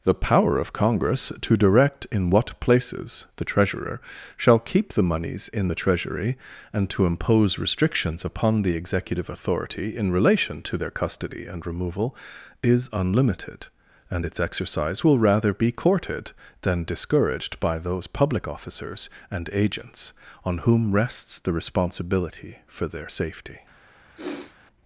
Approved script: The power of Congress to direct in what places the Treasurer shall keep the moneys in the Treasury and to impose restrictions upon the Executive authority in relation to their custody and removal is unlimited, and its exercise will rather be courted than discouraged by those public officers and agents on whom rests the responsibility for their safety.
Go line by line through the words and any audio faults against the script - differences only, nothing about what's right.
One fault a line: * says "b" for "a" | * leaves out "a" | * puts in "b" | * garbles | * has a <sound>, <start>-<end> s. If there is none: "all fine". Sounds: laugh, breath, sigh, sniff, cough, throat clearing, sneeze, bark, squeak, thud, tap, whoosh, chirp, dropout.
* has a sniff, 24.2-24.6 s